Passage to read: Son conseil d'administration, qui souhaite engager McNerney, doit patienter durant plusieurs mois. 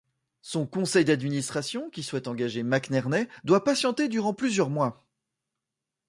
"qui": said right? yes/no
yes